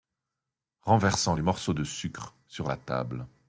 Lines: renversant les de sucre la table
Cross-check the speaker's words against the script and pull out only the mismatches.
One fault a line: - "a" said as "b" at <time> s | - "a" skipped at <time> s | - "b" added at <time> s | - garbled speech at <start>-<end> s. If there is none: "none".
- "morceaux" added at 1.4 s
- "sur" added at 2.5 s